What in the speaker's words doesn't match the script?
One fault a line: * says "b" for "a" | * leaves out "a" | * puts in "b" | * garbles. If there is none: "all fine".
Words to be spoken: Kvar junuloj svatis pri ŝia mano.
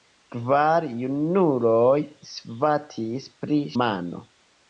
* leaves out "ŝia"